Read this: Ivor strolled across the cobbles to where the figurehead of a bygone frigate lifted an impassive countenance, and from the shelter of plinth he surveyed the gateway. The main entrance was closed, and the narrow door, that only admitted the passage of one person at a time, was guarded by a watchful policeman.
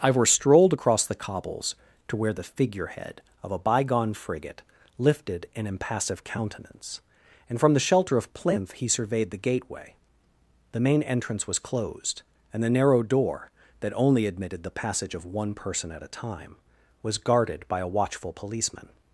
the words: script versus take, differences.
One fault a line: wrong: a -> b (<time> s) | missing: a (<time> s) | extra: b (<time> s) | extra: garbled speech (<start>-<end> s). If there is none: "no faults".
no faults